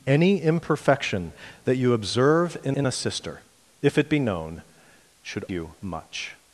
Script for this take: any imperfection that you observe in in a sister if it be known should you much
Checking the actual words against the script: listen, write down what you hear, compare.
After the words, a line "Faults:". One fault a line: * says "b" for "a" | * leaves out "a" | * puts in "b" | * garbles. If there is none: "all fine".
any imperfection that you observe in in a sister if it be known should you much
Faults:
all fine